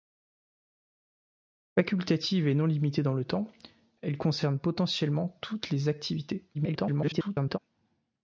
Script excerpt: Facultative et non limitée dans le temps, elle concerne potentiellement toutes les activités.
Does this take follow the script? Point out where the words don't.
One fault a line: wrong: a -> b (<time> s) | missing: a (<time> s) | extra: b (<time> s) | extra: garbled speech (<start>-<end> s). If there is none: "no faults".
extra: garbled speech (6.5-7.6 s)